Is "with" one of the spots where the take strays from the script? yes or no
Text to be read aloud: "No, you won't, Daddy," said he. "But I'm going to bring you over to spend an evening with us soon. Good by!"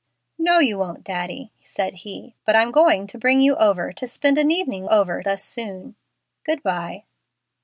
yes